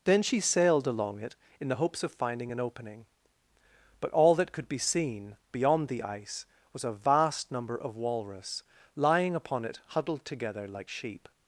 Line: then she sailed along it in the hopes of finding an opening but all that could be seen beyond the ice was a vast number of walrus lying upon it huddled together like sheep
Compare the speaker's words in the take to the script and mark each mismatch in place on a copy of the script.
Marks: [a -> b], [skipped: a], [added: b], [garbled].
then she sailed along it in the hopes of finding an opening but all that could be seen beyond the ice was a vast number of walrus lying upon it huddled together like sheep